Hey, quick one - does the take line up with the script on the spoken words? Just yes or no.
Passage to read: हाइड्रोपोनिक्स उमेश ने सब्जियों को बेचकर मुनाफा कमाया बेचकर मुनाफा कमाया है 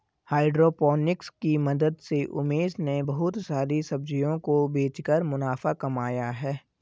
no